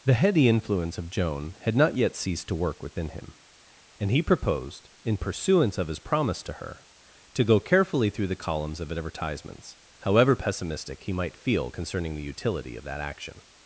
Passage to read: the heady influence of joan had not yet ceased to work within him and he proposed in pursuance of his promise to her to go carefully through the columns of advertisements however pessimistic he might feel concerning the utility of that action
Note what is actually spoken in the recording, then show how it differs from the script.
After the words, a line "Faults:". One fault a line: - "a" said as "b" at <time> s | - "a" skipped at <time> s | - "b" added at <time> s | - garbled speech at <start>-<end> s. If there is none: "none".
the heady influence of joan had not yet ceased to work within him and he proposed in pursuance of his promise to her to go carefully through the columns of advertisements however pessimistic he might feel concerning the utility of that action
Faults:
none